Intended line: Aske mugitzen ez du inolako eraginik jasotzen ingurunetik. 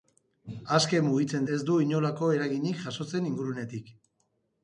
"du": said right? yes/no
yes